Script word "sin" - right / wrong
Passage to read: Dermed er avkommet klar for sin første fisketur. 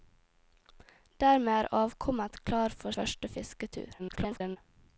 wrong